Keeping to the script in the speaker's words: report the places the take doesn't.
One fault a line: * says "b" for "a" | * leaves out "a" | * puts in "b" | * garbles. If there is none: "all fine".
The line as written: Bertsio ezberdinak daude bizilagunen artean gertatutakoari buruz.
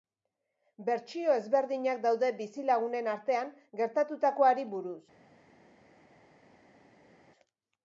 all fine